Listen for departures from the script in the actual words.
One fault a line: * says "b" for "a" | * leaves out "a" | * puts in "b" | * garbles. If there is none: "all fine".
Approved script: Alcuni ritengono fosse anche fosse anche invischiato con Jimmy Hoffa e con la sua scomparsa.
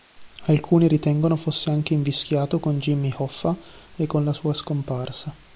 * leaves out "fosse anche"